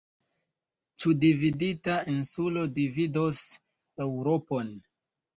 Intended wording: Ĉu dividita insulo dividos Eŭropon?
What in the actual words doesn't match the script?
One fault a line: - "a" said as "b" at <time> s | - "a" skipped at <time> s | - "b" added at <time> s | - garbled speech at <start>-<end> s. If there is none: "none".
none